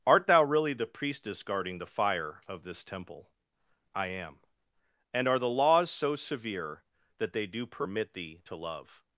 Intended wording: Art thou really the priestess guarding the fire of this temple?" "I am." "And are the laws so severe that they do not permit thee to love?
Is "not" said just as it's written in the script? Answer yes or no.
no